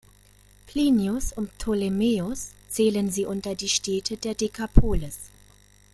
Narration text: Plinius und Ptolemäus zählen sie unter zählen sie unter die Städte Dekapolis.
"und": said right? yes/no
yes